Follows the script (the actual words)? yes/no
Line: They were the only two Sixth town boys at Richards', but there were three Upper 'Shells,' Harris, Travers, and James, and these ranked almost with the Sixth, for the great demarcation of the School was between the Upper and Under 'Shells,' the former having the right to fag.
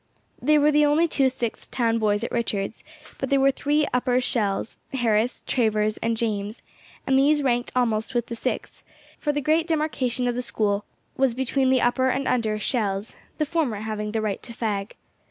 yes